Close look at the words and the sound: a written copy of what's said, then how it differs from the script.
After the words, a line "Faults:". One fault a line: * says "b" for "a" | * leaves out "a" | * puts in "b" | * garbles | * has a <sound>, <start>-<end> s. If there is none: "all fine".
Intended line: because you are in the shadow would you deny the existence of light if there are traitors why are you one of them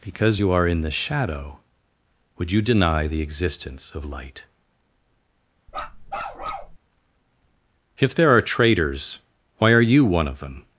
because you are in the shadow would you deny the existence of light if there are traitors why are you one of them
Faults:
* has a bark, 5.7-6.8 s